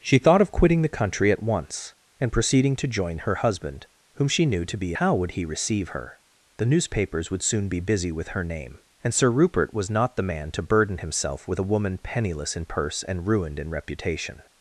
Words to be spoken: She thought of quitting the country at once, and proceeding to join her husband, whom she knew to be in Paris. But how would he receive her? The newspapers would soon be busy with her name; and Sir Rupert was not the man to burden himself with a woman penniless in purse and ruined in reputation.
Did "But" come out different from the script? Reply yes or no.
yes